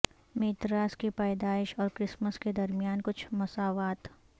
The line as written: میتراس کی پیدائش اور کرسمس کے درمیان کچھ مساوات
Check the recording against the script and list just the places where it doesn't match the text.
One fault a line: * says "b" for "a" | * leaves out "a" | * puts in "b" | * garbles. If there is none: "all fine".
all fine